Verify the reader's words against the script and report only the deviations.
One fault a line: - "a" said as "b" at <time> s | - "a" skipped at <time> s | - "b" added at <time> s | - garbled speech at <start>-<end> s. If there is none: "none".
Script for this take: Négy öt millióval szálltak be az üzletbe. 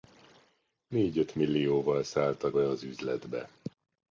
none